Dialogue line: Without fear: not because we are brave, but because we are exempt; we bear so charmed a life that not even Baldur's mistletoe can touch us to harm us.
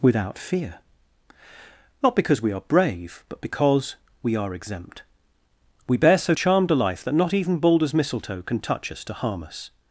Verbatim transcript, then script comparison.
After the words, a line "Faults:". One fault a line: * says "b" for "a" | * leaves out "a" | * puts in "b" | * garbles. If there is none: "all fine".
Without fear: not because we are brave, but because we are exempt; we bear so charmed a life that not even Baldur's mistletoe can touch us to harm us.
Faults:
all fine